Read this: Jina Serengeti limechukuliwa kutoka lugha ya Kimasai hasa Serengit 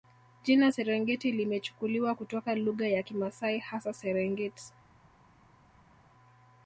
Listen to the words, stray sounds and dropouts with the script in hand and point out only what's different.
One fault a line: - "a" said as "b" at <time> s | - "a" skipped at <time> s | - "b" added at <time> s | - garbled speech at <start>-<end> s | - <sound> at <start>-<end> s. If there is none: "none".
none